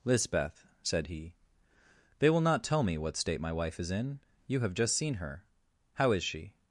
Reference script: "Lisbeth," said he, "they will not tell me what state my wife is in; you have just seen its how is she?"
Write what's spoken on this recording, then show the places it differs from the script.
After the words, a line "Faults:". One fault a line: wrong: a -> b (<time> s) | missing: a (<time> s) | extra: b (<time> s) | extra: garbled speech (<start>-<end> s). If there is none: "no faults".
"Lisbeth," said he, "they will not tell me what state my wife is in; you have just seen her how is she?"
Faults:
wrong: its -> her (5.2 s)